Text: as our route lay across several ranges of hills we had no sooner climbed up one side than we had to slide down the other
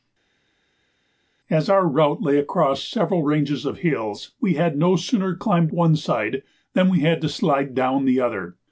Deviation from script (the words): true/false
true